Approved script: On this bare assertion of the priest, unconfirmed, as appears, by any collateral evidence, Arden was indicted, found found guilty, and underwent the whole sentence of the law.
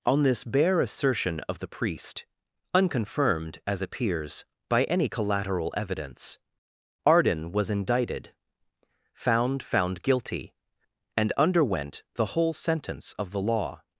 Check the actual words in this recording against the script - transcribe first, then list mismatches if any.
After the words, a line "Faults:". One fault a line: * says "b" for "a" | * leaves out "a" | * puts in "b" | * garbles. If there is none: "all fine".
On this bare assertion of the priest, unconfirmed, as appears, by any collateral evidence, Arden was indicted, found found guilty, and underwent the whole sentence of the law.
Faults:
all fine